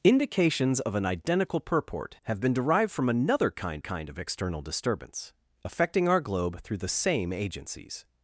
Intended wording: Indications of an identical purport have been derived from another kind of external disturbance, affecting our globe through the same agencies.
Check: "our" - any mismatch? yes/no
no